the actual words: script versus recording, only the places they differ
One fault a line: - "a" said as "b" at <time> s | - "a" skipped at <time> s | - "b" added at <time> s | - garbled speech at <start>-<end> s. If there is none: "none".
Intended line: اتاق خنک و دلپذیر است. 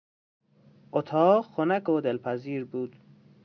- "است" said as "بود" at 2.6 s